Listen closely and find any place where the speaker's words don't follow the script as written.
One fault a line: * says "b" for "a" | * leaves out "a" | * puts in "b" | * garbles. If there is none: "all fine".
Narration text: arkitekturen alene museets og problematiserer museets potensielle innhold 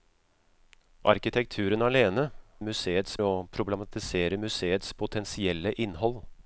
all fine